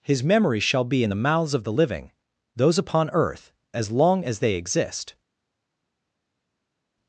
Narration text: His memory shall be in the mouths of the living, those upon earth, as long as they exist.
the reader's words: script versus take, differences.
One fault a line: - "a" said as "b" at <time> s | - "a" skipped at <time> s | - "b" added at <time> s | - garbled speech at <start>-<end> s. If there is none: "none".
none